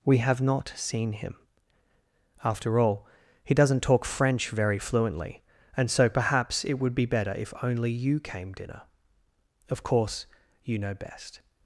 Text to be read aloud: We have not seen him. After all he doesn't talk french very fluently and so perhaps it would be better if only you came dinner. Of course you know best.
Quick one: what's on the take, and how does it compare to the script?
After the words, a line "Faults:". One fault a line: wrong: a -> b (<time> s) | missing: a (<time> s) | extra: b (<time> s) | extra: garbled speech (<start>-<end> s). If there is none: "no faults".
We have not seen him. After all he doesn't talk french very fluently and so perhaps it would be better if only you came dinner. Of course you know best.
Faults:
no faults